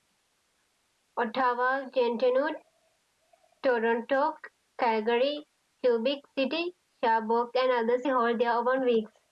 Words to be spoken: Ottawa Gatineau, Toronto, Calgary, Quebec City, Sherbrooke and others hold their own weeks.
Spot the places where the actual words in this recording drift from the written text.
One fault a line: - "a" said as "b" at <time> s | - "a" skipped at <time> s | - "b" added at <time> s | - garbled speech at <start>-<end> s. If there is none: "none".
none